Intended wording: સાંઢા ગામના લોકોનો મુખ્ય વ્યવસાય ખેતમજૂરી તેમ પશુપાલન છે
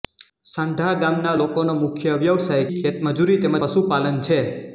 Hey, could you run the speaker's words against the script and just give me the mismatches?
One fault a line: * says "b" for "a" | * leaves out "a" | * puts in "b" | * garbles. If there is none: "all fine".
all fine